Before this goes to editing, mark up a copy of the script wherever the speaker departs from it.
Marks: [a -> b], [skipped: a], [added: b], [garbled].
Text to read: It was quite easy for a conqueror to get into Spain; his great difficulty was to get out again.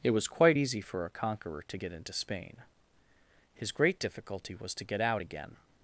It was quite easy for a conqueror to get into Spain; his great difficulty was to get out again.